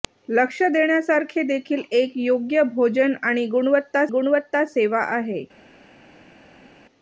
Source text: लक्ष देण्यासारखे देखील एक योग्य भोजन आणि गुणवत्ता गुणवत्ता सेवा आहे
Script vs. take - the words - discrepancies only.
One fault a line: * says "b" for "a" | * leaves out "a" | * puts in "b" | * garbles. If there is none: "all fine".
all fine